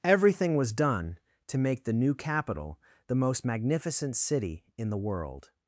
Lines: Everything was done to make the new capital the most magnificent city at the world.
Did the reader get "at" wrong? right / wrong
wrong